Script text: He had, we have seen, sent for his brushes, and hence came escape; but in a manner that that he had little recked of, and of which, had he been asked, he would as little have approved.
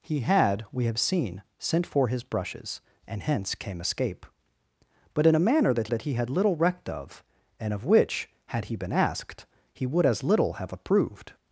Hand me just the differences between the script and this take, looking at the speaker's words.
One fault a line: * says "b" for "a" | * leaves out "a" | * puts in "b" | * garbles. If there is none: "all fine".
all fine